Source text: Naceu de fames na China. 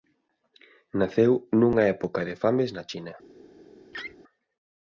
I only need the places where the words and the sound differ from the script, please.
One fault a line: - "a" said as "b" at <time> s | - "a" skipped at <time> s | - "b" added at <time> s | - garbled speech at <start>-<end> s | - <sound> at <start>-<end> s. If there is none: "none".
- "nunha época" added at 1.6 s
- laugh at 3.9-4.2 s